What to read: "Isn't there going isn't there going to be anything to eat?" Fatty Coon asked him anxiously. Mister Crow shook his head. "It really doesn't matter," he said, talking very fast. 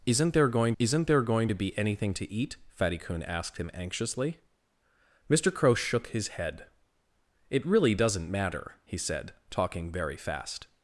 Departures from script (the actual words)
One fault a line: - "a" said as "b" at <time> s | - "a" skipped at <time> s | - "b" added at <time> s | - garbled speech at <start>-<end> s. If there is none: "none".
none